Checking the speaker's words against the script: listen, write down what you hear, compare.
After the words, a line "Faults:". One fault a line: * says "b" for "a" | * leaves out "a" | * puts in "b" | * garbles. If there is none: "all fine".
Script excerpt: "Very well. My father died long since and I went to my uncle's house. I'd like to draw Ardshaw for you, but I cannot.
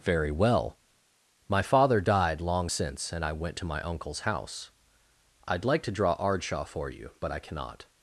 "Very well. My father died long since and I went to my uncle's house. I'd like to draw Ardshaw for you, but I cannot.
Faults:
all fine